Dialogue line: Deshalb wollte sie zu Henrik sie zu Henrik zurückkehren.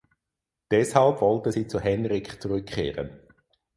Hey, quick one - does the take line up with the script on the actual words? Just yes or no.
no